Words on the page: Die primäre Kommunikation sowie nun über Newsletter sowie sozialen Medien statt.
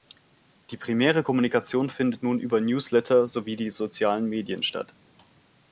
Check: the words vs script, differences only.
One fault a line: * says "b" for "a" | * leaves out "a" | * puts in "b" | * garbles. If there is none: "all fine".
* says "findet" for "sowie"
* puts in "die"